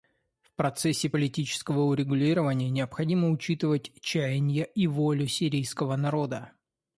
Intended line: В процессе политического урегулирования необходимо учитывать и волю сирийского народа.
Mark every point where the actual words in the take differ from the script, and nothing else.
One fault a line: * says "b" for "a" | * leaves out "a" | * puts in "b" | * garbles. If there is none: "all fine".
* puts in "чаяния"